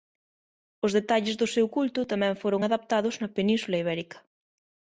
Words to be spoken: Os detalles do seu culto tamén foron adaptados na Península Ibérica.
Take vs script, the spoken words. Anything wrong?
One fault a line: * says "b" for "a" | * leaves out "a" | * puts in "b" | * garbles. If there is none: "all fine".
all fine